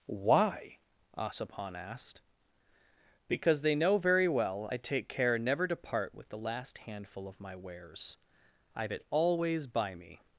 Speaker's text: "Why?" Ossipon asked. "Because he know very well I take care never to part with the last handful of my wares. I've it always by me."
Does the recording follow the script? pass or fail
fail